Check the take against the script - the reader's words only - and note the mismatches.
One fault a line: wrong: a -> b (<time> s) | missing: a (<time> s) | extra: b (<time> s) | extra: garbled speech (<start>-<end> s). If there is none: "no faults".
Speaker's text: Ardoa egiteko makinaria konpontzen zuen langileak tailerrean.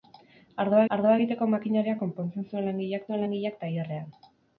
extra: ardoa (1.0 s)
extra: zuen langileak (3.0 s)